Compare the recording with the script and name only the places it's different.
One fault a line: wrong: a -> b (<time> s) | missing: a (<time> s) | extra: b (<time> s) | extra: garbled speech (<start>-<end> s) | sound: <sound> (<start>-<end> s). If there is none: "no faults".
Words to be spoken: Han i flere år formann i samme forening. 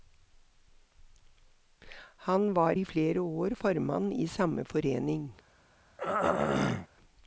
extra: var (2.5 s)
sound: throat clearing (6.0-6.9 s)